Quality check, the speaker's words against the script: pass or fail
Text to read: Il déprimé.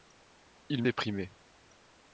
pass